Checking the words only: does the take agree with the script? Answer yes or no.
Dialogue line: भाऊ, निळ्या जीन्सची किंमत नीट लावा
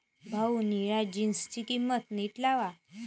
yes